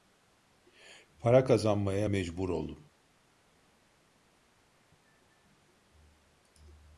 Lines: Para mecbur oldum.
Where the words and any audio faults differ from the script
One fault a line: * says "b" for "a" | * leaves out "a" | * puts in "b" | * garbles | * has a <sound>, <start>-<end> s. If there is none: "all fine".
* puts in "kazanmaya"